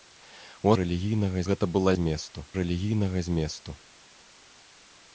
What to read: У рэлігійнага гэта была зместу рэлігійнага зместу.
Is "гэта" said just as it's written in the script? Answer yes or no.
yes